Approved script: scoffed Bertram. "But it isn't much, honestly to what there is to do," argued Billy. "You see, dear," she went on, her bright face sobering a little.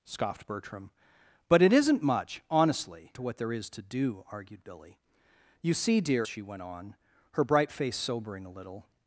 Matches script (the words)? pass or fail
pass